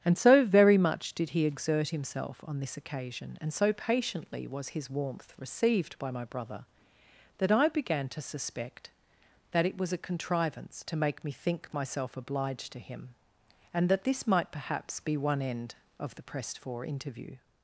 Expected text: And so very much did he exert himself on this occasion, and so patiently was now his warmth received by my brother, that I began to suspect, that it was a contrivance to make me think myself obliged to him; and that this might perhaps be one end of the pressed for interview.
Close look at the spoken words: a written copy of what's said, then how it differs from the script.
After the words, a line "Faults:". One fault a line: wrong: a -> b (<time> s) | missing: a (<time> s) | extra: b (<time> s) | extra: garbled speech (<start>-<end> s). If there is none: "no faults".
And so very much did he exert himself on this occasion, and so patiently was his warmth received by my brother, that I began to suspect, that it was a contrivance to make me think myself obliged to him; and that this might perhaps be one end of the pressed for interview.
Faults:
missing: now (4.7 s)